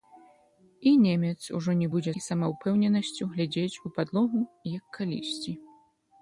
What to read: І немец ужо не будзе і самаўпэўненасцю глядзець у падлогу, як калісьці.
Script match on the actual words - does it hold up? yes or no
yes